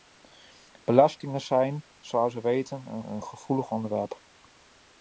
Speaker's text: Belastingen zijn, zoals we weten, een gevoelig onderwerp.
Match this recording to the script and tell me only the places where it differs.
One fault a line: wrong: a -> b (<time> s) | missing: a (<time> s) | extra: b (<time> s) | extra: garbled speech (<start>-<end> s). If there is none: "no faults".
extra: een (3.0 s)